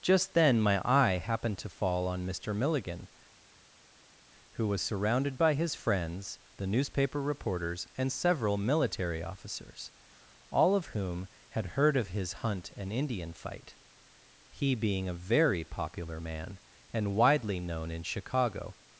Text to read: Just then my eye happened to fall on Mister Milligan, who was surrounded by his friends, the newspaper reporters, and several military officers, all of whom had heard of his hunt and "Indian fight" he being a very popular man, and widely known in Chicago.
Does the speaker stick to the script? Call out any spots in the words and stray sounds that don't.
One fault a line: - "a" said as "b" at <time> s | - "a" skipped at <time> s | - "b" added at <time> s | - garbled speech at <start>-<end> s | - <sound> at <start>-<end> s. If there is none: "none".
none